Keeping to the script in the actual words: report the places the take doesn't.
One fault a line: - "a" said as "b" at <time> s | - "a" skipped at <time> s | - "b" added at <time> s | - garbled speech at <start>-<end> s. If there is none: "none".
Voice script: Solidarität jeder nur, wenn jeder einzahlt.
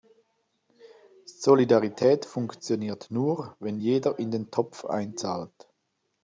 - "jeder" said as "funktioniert" at 2.2 s
- "in den Topf" added at 4.2 s